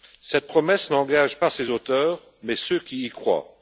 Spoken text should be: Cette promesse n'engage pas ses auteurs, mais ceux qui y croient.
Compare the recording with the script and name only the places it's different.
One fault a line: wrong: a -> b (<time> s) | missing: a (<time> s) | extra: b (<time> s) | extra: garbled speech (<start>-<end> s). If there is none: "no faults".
no faults